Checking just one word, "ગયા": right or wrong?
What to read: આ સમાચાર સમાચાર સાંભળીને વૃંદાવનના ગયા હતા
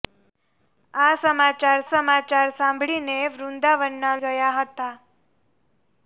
right